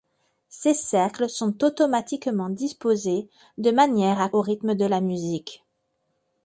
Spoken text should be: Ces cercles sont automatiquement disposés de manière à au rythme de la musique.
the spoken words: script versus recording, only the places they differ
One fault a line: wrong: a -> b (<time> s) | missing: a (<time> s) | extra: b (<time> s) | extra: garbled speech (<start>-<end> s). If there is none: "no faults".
no faults